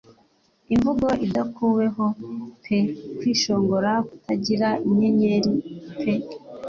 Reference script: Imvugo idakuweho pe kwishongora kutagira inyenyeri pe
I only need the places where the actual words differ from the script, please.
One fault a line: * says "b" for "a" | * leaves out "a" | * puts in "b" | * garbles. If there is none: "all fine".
all fine